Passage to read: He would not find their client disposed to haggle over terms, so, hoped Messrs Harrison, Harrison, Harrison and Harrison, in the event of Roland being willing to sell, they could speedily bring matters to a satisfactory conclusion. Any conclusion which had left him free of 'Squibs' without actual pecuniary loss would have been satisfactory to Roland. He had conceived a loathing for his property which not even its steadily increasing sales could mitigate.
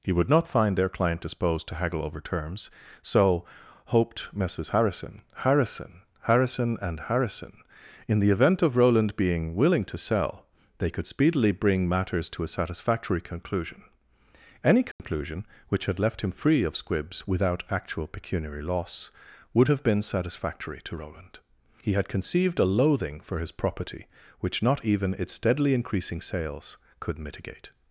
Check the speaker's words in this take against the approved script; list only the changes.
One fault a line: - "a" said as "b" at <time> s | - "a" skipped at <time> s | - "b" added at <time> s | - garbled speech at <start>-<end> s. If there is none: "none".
none